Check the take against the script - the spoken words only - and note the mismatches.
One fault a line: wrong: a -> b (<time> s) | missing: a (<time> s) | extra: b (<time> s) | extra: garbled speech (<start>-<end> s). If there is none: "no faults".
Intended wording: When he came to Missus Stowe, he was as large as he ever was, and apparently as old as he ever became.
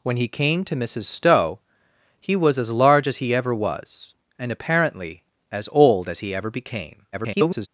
extra: garbled speech (7.1-7.7 s)